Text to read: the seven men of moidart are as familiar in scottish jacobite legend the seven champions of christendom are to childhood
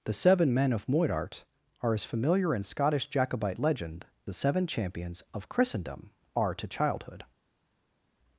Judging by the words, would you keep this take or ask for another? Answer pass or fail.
pass